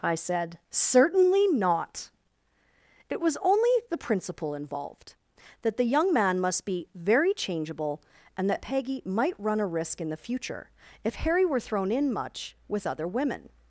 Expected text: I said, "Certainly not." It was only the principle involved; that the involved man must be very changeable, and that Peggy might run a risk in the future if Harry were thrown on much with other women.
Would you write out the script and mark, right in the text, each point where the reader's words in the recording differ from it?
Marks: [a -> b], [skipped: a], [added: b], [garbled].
I said, "Certainly not." It was only the principle involved; that the [involved -> young] man must be very changeable, and that Peggy might run a risk in the future if Harry were thrown [on -> in] much with other women.